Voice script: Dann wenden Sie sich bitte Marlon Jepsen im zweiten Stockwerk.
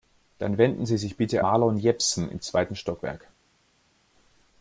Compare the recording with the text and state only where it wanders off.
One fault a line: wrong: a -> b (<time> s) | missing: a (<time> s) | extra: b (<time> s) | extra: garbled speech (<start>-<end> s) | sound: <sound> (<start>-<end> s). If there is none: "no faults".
no faults